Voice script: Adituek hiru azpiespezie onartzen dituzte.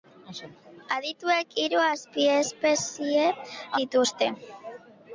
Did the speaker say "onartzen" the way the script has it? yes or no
no